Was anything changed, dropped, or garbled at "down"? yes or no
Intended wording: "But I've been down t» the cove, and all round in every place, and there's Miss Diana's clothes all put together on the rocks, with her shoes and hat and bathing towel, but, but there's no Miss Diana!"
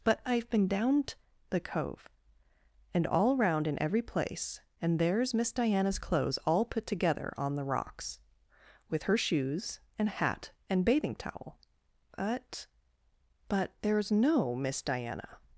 no